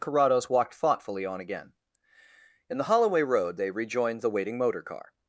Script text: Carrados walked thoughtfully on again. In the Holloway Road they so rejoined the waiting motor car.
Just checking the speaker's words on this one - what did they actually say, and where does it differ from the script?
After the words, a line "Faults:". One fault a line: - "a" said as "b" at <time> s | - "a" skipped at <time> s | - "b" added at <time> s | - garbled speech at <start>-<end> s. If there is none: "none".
Carrados walked thoughtfully on again. In the Holloway Road they rejoined the waiting motor car.
Faults:
- "so" skipped at 3.7 s